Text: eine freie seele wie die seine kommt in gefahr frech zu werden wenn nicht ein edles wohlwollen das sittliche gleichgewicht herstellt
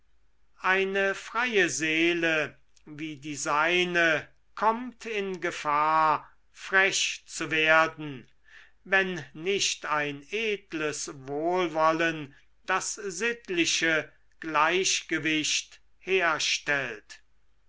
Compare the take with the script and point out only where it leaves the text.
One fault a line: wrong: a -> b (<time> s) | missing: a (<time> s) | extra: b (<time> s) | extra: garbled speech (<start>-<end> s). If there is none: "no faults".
no faults